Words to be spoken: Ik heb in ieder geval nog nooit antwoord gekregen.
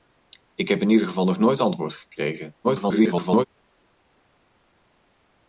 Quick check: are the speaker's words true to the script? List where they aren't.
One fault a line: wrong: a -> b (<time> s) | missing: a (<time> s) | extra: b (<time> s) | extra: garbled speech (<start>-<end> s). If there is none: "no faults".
extra: garbled speech (2.6-3.5 s)